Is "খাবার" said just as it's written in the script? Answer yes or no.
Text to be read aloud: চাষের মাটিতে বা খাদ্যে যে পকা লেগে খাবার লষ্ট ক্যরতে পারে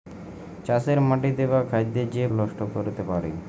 no